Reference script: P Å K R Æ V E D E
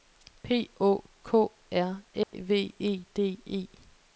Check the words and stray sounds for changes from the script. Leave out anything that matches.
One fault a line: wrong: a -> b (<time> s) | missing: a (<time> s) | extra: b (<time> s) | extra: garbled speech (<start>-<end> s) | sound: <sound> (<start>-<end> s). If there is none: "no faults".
sound: dropout (2.2-2.3 s)